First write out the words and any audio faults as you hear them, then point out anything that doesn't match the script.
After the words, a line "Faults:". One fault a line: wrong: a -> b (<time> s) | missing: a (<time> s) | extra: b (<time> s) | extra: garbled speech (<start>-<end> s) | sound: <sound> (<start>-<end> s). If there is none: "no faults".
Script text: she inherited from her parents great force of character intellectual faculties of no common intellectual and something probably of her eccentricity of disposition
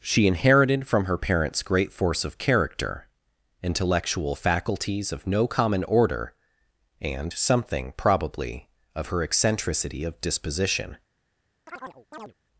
she inherited from her parents great force of character intellectual faculties of no common order and something probably of her eccentricity of disposition
Faults:
wrong: intellectual -> order (5.8 s)
sound: chirp (11.7-12.3 s)